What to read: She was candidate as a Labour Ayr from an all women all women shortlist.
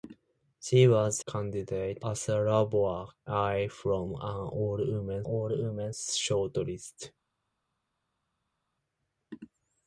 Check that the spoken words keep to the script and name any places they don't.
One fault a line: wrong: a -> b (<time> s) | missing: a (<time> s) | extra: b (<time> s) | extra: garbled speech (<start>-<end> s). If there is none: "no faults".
no faults